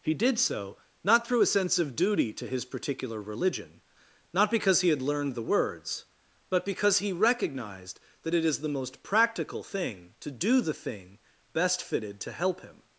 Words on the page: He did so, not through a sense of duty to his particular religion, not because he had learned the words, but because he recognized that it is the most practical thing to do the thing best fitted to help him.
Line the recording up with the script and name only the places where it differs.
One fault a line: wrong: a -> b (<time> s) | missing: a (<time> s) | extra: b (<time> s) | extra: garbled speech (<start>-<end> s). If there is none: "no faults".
no faults